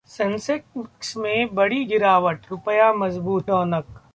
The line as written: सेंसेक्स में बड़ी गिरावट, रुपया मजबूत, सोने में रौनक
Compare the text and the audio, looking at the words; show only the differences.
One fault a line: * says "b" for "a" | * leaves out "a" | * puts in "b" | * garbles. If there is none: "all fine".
* leaves out "सोने में"